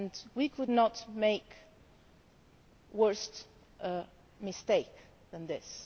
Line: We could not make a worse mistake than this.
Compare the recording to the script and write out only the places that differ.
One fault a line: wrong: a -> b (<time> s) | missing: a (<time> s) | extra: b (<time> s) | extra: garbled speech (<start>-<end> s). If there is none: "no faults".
no faults